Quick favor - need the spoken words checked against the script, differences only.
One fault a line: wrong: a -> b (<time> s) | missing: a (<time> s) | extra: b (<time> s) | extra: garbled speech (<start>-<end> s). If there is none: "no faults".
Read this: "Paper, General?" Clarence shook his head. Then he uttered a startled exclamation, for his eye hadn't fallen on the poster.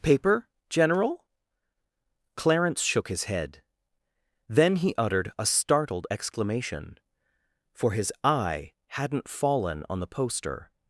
no faults